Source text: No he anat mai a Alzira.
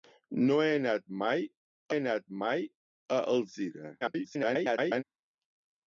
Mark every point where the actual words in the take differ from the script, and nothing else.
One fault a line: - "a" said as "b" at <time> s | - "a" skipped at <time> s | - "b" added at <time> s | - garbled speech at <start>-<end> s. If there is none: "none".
- "anat mai" added at 2.0 s
- garbled speech at 4.0-5.0 s